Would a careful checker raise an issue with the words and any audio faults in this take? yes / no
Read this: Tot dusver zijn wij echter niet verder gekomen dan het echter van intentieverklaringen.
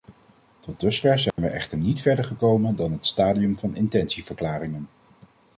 yes